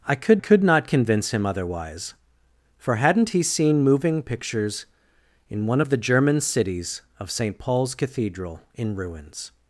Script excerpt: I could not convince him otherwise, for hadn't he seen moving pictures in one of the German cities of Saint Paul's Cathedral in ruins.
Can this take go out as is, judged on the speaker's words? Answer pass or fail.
fail